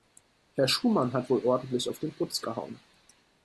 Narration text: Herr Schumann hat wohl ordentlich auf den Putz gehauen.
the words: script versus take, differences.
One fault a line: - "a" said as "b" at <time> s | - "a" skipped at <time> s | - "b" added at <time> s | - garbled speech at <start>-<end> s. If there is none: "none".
none